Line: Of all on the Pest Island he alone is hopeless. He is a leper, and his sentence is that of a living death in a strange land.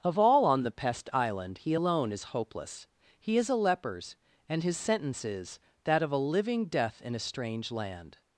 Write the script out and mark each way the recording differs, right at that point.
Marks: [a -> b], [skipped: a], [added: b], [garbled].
Of all on the Pest Island he alone is hopeless. He is a [leper, -> lepers] and his sentence is that of a living death in a strange land.